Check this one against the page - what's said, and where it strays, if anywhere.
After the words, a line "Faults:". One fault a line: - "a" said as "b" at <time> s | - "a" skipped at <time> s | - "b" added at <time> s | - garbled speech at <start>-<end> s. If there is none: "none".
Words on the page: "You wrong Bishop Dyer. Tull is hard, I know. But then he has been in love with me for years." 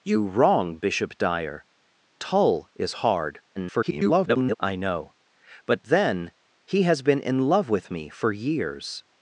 "You wrong Bishop Dyer. Tull is hard, [garbled] I know. But then he has been in love with me for years."
Faults:
- garbled speech at 3.6-4.5 s